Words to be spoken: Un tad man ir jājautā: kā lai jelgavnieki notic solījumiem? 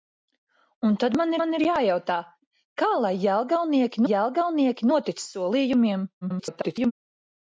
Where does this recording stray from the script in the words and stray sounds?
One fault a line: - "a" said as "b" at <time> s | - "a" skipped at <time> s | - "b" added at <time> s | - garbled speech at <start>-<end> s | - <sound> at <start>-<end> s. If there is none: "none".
- "man" added at 1.4 s
- "jelgavnieki" added at 4.1 s
- garbled speech at 6.2-6.9 s